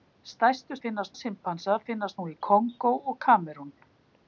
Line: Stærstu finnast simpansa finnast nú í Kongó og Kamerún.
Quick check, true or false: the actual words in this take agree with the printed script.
true